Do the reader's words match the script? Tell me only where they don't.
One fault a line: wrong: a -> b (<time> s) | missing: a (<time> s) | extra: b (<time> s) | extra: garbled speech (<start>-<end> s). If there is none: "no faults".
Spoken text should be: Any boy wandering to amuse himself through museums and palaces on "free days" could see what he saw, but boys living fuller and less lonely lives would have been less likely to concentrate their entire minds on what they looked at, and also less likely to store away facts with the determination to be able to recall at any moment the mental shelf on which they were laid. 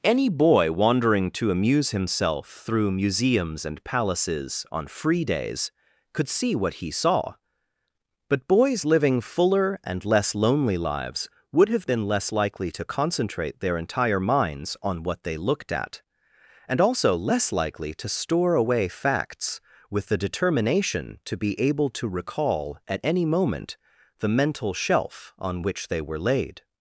no faults